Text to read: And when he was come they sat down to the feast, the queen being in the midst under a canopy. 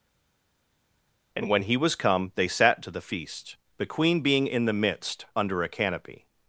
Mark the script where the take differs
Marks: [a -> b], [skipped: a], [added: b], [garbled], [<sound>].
And when he was come they sat [skipped: down] to the feast, the queen being in the midst under a canopy.